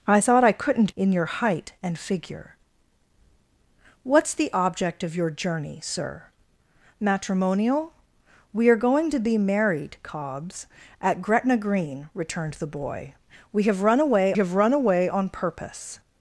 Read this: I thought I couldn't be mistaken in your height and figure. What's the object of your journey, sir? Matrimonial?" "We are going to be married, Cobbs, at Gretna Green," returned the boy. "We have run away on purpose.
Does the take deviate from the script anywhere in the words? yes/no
yes